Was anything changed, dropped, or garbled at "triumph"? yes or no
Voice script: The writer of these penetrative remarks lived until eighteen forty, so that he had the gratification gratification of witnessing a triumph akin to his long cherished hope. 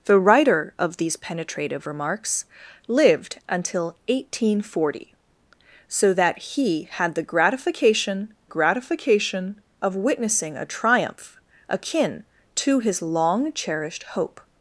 no